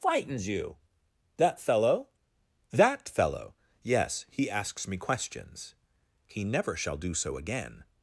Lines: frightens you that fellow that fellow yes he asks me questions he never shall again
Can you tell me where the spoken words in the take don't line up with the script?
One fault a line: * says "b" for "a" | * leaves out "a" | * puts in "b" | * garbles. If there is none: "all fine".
* puts in "do so"